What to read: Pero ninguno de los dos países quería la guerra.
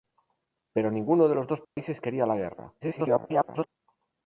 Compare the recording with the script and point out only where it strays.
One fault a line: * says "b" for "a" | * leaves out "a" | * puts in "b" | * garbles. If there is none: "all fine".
* garbles